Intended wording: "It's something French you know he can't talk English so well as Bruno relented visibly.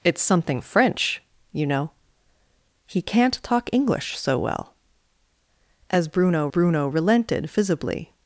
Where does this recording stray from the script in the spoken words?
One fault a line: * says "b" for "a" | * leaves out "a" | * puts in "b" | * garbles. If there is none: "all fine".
* puts in "Bruno"